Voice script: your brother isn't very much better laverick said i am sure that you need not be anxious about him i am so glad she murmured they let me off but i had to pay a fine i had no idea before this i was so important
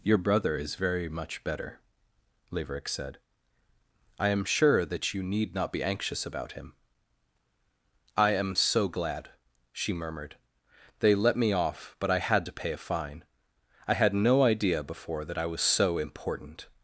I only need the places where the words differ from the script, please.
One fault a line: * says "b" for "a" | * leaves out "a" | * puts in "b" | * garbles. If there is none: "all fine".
* says "is" for "isn't"
* says "that" for "this"